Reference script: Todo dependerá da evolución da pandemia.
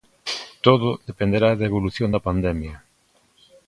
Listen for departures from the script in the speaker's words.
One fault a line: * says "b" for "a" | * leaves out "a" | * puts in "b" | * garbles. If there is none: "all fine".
all fine